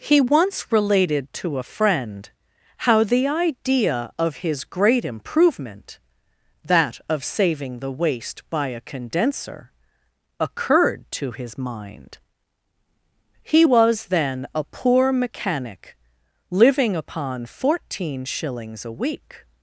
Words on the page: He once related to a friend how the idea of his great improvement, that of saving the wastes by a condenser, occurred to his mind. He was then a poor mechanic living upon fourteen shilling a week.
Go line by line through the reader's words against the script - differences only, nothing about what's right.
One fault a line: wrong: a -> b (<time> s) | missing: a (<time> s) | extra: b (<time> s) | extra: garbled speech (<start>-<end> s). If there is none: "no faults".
wrong: wastes -> waste (7.9 s)
wrong: shilling -> shillings (18.2 s)